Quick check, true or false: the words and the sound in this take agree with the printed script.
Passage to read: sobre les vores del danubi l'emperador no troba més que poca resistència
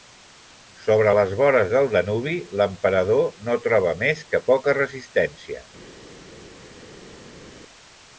true